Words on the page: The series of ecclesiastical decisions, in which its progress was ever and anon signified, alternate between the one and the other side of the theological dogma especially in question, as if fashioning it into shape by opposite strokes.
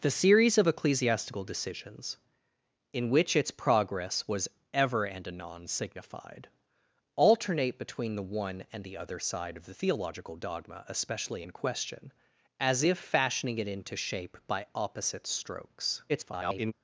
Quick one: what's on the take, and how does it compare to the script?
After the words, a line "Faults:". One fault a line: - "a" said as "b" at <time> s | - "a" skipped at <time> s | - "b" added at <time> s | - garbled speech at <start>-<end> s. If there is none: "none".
The series of ecclesiastical decisions, in which its progress was ever and anon signified, alternate between the one and the other side of the theological dogma especially in question, as if fashioning it into shape by opposite strokes. [garbled]
Faults:
- garbled speech at 16.1-16.7 s